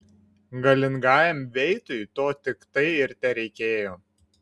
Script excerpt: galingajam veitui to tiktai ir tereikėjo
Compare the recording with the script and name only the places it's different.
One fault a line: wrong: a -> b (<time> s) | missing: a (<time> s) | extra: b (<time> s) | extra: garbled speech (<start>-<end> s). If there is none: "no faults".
no faults